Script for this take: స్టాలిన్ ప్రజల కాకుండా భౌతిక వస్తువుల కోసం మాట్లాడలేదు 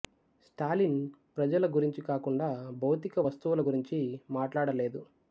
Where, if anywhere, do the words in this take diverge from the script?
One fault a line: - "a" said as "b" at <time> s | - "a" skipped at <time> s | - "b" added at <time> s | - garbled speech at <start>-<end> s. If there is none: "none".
- "గురించి" added at 1.8 s
- "కోసం" said as "గురించి" at 3.7 s